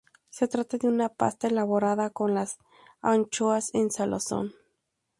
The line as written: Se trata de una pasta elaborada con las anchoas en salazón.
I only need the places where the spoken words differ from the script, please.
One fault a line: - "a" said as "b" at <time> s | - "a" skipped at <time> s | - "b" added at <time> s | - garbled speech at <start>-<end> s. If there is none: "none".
none